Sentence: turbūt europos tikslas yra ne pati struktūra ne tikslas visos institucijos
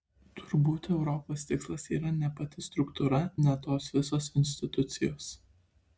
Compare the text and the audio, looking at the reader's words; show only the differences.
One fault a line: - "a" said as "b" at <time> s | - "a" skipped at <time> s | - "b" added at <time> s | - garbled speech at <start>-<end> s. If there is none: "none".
- "tikslas" said as "tos" at 3.7 s